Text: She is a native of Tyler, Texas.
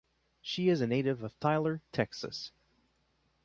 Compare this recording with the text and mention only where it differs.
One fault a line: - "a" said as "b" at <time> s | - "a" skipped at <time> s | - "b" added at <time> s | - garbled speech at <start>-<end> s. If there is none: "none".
none